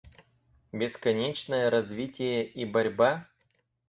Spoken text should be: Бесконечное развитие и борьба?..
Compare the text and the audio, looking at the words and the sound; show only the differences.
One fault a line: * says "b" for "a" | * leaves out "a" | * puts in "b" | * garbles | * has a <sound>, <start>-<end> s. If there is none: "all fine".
all fine